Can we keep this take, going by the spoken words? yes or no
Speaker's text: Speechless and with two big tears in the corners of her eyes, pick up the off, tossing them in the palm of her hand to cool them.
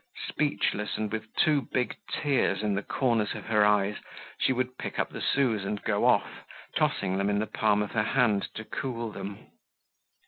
no